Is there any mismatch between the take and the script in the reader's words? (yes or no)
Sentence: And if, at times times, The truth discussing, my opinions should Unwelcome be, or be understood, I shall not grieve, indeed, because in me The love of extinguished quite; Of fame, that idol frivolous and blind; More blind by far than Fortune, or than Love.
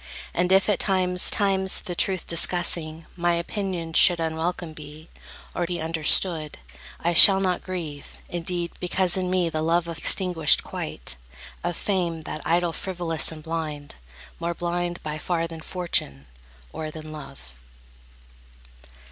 no